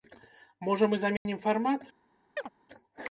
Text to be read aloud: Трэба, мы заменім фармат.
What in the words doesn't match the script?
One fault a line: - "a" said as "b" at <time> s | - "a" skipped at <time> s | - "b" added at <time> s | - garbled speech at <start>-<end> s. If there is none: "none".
- "Трэба" said as "Можа" at 0.7 s